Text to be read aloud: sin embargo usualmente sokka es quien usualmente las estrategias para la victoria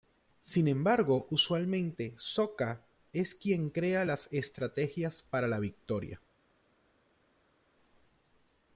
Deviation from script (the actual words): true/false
true